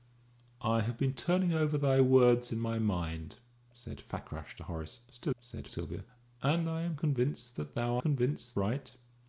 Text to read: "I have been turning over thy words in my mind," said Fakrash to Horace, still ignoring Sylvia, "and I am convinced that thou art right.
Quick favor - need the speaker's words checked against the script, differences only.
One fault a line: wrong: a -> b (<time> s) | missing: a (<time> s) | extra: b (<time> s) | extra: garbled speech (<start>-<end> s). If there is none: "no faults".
wrong: ignoring -> said (5.4 s)
wrong: art -> convinced (8.0 s)